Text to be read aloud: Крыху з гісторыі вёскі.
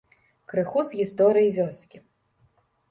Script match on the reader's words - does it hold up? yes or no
yes